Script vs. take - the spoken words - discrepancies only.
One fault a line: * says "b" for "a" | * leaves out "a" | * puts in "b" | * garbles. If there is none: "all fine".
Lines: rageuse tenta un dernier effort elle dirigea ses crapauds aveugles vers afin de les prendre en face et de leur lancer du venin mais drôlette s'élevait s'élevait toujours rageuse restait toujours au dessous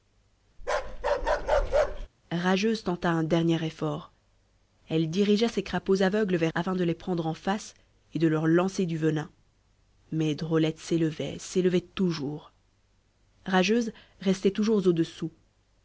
all fine